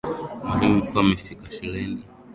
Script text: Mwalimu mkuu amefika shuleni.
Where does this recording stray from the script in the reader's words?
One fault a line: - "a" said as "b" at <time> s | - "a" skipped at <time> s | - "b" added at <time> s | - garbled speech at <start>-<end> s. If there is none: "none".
none